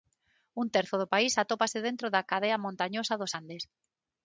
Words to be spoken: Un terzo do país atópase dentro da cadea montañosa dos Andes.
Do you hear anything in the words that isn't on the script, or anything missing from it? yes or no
no